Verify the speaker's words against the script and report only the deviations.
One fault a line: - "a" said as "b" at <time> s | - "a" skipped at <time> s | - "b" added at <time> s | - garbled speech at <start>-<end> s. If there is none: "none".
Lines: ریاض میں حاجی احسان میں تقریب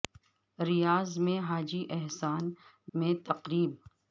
none